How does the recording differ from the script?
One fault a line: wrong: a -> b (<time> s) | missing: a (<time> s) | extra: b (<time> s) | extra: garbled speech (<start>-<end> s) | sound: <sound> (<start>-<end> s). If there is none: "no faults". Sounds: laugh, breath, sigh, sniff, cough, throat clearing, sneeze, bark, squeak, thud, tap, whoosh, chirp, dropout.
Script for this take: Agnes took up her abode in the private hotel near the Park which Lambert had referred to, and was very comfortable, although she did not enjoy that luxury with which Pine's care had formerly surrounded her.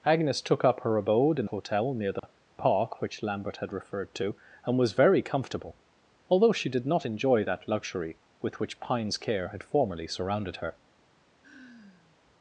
missing: the private (1.4 s)
sound: dropout (2.2-2.2 s)
sound: sigh (11.4-12.2 s)